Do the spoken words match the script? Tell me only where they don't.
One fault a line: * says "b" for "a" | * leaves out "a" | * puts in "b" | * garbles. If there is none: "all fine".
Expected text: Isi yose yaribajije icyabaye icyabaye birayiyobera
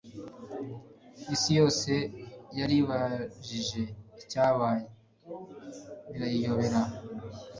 * leaves out "icyabaye"